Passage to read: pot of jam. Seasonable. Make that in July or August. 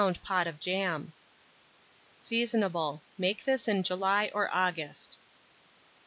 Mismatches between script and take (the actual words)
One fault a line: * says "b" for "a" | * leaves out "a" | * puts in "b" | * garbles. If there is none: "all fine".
* says "this" for "that"